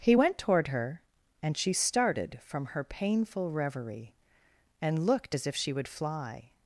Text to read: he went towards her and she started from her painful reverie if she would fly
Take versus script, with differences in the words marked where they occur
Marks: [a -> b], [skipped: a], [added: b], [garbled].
he went [towards -> toward] her and she started from her painful reverie [added: and looked as] if she would fly